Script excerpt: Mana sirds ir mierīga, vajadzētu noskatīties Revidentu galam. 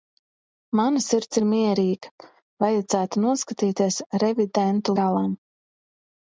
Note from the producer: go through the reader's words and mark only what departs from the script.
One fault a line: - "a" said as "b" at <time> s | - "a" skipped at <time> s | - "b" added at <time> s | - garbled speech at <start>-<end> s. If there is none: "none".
none